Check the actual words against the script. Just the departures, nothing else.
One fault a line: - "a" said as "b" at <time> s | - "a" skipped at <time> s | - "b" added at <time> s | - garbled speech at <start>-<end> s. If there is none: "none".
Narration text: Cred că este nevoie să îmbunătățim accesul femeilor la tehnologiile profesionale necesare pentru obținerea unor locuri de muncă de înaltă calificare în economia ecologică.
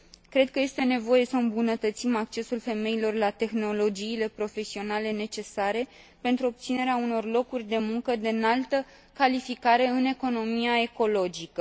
none